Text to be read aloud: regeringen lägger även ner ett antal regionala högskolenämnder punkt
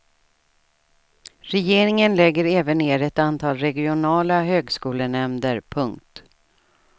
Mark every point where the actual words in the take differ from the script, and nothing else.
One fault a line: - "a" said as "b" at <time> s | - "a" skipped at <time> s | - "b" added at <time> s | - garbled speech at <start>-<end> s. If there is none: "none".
none